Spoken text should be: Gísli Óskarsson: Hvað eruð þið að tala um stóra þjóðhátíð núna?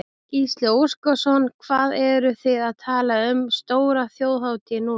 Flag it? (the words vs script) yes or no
no